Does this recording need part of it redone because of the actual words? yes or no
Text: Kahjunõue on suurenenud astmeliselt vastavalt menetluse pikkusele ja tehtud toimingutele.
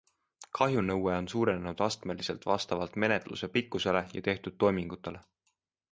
no